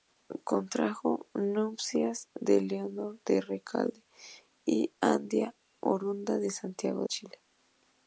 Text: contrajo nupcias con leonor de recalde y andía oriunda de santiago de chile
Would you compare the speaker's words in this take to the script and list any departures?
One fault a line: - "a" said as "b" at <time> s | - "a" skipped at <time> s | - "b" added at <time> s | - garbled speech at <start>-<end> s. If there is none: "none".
- "de" skipped at 7.0 s